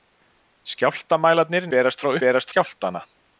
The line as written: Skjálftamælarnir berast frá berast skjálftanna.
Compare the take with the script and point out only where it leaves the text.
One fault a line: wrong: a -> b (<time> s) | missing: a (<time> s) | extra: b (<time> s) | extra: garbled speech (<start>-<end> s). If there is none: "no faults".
no faults